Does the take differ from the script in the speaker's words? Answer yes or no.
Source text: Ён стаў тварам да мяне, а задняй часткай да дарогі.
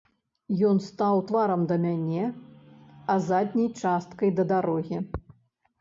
no